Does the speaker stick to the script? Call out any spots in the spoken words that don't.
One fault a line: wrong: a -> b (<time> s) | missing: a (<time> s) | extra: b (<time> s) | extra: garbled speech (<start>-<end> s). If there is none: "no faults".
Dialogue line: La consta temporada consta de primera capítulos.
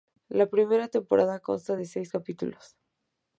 wrong: consta -> primera (0.5 s)
wrong: primera -> seis (1.8 s)